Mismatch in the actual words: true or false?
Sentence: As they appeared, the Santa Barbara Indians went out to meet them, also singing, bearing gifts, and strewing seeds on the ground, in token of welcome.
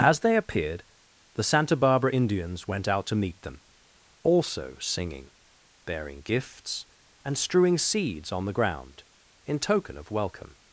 false